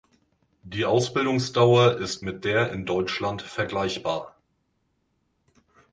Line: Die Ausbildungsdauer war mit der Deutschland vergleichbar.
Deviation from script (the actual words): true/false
true